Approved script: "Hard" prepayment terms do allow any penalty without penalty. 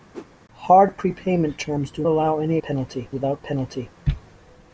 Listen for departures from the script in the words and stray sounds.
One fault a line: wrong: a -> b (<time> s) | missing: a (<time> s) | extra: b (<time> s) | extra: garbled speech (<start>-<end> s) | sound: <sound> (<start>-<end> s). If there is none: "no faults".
sound: whoosh (0.1-0.3 s)